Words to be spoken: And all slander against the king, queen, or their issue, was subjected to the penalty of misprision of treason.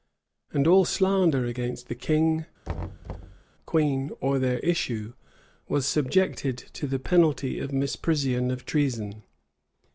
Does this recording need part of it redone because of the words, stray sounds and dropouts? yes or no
yes